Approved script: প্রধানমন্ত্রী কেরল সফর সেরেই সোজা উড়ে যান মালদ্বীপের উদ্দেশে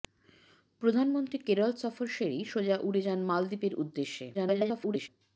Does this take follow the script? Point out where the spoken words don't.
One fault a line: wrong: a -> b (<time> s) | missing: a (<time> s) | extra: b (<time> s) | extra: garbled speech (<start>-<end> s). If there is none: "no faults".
extra: garbled speech (4.3-5.1 s)